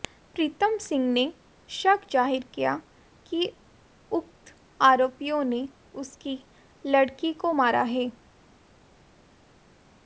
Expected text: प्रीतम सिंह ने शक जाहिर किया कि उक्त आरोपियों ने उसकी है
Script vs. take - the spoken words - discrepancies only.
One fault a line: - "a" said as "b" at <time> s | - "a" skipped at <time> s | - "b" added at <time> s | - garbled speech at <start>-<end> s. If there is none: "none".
- "लड़की को मारा" added at 6.9 s